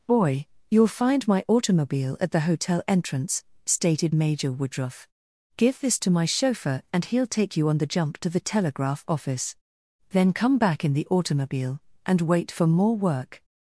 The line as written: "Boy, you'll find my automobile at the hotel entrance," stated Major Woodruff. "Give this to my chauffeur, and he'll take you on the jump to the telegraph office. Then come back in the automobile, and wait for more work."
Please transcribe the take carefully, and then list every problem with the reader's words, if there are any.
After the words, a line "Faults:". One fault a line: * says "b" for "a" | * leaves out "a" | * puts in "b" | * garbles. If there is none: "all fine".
"Boy, you'll find my automobile at the hotel entrance," stated Major Woodruff. "Give this to my chauffeur, and he'll take you on the jump to the telegraph office. Then come back in the automobile, and wait for more work."
Faults:
all fine